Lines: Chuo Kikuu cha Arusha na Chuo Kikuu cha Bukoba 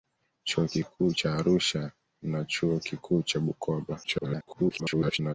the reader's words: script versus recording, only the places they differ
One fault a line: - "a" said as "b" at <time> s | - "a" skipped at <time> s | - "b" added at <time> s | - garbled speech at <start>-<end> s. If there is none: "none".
- garbled speech at 4.0-5.3 s